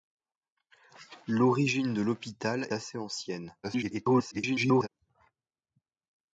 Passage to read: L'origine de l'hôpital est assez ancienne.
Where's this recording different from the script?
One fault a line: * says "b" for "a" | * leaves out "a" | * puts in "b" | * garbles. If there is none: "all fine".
* leaves out "est"
* garbles